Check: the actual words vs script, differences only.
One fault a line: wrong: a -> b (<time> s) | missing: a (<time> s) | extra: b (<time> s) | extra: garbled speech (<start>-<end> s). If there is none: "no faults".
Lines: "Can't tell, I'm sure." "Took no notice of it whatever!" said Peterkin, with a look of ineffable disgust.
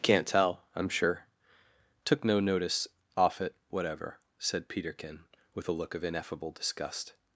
wrong: of -> off (3.1 s)